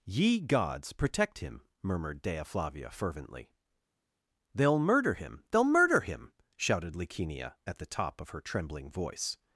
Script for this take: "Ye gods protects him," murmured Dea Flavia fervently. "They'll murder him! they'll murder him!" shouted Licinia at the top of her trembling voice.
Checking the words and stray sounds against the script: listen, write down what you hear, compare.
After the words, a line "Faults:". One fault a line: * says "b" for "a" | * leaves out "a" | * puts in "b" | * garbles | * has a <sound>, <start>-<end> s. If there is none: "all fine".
"Ye gods protect him," murmured Dea Flavia fervently. "They'll murder him! they'll murder him!" shouted Licinia at the top of her trembling voice.
Faults:
* says "protect" for "protects"